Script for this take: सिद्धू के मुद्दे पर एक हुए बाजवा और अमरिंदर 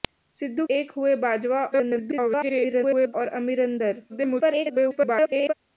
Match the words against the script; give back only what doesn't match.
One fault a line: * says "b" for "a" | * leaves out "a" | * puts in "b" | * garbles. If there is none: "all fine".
* leaves out "के मुद्दे पर"
* garbles
* garbles